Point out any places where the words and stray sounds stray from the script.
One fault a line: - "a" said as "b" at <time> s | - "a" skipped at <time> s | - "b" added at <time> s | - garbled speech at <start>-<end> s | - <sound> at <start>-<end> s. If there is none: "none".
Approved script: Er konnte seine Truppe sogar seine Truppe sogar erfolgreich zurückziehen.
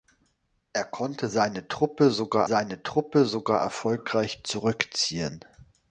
none